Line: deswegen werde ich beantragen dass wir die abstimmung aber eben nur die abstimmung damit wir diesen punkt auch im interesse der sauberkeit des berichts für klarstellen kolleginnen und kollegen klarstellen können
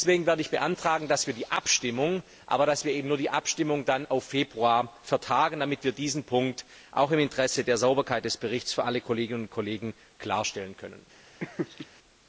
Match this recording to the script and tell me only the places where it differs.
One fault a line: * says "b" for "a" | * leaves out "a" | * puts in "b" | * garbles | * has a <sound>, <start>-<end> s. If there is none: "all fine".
* puts in "auf februar vertagen"
* says "alle" for "klarstellen"
* has a laugh, 11.4-11.9 s